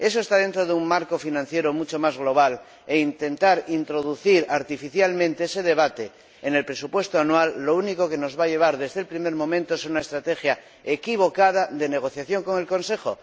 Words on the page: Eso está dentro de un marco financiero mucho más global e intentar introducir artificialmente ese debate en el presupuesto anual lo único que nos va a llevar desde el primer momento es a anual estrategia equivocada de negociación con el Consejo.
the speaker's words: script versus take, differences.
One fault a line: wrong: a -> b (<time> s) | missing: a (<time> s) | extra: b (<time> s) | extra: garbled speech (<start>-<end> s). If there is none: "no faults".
wrong: anual -> una (9.9 s)